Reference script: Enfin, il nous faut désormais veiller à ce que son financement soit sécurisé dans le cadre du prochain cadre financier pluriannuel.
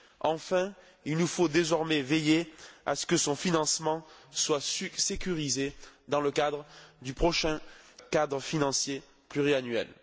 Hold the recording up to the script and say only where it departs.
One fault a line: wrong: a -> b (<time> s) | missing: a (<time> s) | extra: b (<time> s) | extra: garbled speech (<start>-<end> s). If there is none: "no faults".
no faults